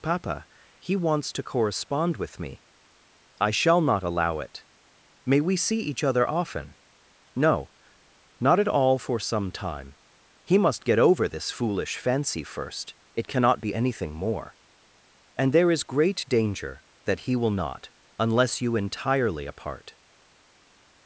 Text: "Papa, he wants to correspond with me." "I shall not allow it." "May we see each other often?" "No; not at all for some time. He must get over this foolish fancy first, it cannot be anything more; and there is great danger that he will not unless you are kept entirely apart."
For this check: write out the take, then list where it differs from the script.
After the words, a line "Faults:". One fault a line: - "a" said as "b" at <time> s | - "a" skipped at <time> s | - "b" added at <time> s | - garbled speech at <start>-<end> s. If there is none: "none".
"Papa, he wants to correspond with me." "I shall not allow it." "May we see each other often?" "No; not at all for some time. He must get over this foolish fancy first, it cannot be anything more; and there is great danger that he will not unless you entirely apart."
Faults:
- "are kept" skipped at 18.8 s